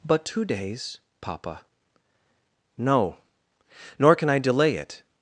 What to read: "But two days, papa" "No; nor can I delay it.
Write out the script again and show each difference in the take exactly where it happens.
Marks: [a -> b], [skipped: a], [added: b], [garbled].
"But two days, papa" "No; nor can I delay it.